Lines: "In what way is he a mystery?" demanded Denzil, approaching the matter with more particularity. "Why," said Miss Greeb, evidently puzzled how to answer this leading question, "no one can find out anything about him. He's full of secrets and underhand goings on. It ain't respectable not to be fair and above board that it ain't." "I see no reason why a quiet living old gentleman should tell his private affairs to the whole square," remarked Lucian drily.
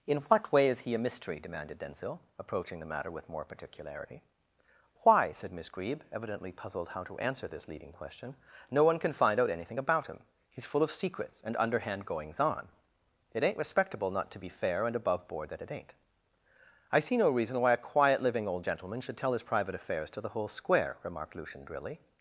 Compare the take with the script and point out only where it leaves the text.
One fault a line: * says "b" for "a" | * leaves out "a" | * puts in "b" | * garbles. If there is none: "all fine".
all fine